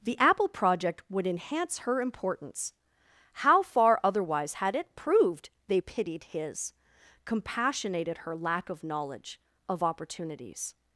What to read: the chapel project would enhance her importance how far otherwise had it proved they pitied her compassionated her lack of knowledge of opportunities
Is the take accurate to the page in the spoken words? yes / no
no